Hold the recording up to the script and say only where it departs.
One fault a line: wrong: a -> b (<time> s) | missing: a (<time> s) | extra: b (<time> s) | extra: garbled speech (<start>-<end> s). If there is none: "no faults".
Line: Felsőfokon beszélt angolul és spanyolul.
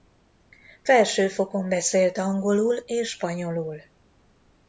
no faults